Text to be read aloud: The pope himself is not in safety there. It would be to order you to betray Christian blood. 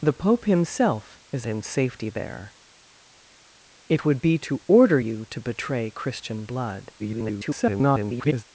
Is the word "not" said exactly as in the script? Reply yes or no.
no